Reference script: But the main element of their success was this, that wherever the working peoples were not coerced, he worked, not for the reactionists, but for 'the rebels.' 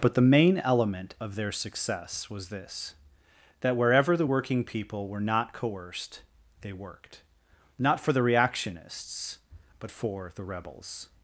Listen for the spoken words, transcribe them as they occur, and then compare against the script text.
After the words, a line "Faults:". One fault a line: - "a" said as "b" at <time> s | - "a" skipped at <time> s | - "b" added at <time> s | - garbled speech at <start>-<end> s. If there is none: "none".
But the main element of their success was this, that wherever the working people were not coerced, they worked, not for the reactionists, but for 'the rebels.'
Faults:
- "peoples" said as "people" at 4.6 s
- "he" said as "they" at 6.6 s